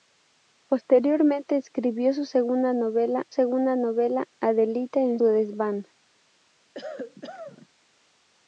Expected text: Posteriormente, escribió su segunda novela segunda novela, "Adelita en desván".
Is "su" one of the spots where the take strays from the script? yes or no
no